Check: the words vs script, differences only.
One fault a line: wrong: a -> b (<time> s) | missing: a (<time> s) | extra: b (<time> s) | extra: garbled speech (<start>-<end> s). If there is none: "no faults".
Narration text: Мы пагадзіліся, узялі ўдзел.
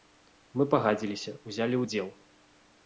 no faults